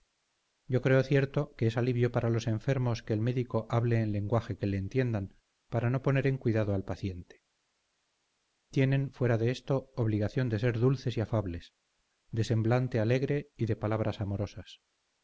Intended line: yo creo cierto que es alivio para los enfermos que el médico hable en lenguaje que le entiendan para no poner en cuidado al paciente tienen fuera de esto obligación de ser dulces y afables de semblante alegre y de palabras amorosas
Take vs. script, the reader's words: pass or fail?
pass